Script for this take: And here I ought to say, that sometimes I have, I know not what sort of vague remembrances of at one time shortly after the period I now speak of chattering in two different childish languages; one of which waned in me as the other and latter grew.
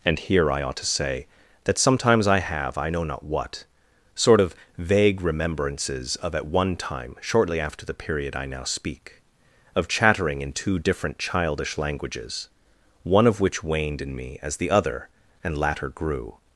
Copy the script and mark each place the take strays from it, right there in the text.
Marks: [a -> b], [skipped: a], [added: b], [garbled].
And here I ought to say, that sometimes I have, I know not what sort of vague remembrances of at one time shortly after the period I now speak of chattering in two different childish languages; one of which waned in me as the other and latter grew.